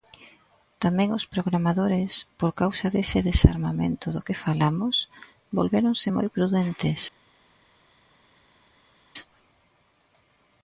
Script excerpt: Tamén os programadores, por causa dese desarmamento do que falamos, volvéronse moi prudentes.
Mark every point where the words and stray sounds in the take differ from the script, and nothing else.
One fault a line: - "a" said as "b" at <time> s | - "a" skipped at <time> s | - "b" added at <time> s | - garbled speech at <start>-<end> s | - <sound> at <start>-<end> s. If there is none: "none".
none